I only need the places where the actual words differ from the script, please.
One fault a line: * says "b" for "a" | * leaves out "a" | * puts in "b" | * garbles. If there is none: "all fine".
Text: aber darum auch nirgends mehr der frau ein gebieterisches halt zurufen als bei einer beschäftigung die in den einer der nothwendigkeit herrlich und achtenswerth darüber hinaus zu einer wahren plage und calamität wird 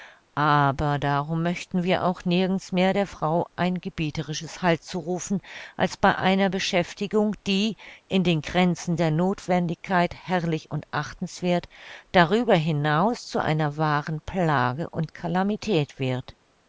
* puts in "möchten wir"
* says "grenzen" for "einer"